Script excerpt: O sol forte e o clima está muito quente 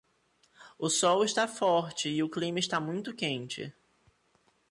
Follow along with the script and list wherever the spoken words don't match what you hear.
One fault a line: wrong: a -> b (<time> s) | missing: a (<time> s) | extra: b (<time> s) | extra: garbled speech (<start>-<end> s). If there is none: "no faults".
extra: está (1.2 s)